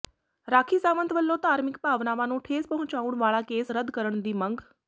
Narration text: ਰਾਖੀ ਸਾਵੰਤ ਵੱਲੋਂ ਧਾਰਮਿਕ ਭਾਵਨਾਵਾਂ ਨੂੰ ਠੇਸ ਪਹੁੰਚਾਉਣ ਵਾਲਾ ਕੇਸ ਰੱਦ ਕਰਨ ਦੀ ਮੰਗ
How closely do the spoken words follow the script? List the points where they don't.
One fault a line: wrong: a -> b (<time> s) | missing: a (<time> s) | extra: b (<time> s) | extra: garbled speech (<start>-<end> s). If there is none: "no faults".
no faults